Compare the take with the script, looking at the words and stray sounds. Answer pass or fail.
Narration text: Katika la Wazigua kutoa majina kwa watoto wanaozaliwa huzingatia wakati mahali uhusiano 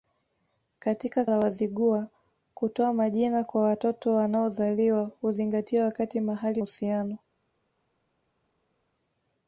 pass